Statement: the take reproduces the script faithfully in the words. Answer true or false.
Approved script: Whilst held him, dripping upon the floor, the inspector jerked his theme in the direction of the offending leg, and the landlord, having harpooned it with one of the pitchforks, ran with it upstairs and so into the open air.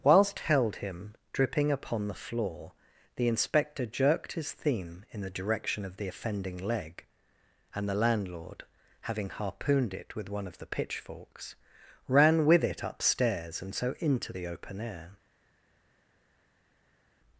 true